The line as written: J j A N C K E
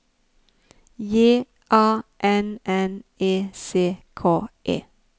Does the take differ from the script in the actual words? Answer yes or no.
yes